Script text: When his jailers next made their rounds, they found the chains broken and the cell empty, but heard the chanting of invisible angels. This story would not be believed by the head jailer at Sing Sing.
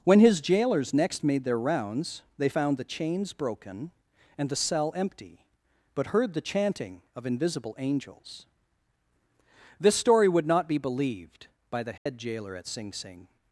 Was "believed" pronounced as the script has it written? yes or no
yes